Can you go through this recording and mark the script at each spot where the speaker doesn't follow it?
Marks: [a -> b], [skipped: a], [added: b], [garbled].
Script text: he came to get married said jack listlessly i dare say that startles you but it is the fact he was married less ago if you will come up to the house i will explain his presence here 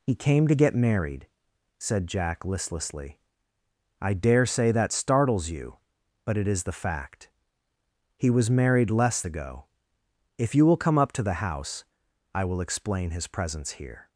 he came to get married said jack listlessly i dare say that startles you but it is the fact he was married less ago if you will come up to the house i will explain his presence here